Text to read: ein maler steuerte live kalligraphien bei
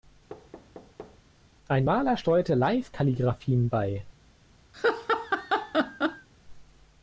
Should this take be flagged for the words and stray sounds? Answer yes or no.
yes